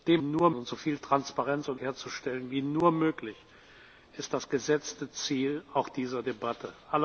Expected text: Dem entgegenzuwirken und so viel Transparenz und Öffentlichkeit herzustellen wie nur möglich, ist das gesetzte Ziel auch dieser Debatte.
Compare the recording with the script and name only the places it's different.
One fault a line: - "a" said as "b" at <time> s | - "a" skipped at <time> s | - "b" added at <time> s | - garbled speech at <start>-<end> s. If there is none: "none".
- "entgegenzuwirken" said as "nur" at 0.2 s
- "Öffentlichkeit" skipped at 1.8 s